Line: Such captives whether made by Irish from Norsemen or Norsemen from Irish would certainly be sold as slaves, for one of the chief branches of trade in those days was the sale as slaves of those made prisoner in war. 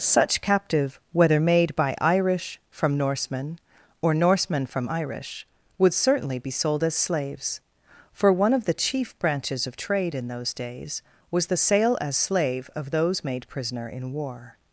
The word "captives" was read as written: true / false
false